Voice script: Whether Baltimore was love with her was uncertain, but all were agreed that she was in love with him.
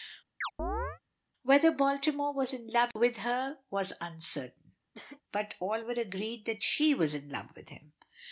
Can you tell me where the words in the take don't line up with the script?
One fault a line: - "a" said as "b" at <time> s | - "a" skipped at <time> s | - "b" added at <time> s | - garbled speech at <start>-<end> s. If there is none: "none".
- "in" added at 2.5 s